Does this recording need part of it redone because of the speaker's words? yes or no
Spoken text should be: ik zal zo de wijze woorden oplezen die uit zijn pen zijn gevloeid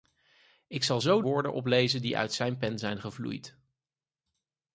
yes